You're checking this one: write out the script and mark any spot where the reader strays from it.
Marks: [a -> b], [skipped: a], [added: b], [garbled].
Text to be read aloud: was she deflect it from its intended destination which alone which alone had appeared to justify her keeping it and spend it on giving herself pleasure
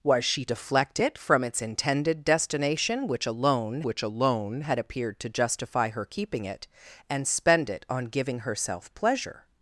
was she deflect it from its intended destination which alone which alone had appeared to justify her keeping it and spend it on giving herself pleasure